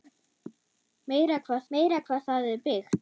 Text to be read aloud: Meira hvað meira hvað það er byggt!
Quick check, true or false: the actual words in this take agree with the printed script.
true